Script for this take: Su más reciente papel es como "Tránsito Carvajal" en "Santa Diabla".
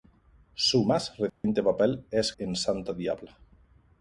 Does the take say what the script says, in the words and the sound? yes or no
no